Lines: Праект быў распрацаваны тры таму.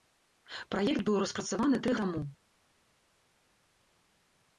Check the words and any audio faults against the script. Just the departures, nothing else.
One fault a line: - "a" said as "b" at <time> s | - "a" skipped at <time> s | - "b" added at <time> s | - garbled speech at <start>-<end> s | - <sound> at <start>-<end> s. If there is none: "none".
none